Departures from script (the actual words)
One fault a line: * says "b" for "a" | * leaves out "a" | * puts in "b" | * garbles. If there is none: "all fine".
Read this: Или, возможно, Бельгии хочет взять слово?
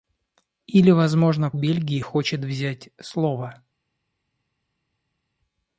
all fine